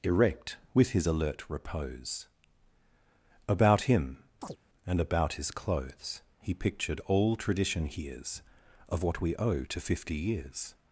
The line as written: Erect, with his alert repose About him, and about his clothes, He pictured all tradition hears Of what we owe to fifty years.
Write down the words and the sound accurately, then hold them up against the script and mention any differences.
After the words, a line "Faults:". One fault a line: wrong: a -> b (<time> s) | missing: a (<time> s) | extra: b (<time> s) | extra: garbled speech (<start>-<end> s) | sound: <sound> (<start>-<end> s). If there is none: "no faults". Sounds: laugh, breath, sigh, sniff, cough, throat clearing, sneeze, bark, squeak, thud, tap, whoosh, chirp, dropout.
Erect, with his alert repose About him, and about his clothes, He pictured all tradition hears Of what we owe to fifty years.
Faults:
sound: chirp (4.4-4.6 s)